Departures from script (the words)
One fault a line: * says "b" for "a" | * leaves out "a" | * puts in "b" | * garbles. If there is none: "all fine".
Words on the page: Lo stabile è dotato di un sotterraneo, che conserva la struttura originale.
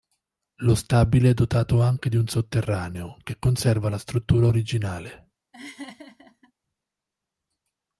* puts in "anche"